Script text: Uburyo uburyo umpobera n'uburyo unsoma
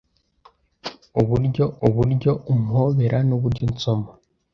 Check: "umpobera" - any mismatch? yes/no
no